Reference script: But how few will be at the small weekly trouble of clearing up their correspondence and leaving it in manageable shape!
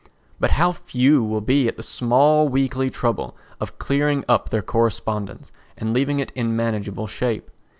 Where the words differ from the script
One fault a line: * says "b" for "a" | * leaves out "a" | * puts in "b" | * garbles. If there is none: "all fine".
all fine